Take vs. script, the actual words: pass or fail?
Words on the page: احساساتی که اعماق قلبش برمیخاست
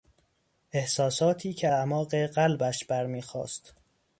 pass